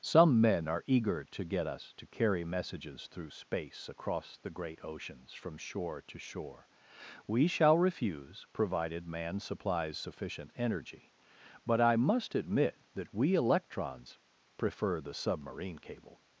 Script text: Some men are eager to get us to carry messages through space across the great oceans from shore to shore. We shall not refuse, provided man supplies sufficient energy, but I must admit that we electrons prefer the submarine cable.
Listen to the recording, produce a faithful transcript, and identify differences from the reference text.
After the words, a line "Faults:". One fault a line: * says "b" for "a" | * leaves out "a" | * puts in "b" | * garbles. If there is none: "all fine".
Some men are eager to get us to carry messages through space across the great oceans from shore to shore. We shall refuse, provided man supplies sufficient energy, but I must admit that we electrons prefer the submarine cable.
Faults:
* leaves out "not"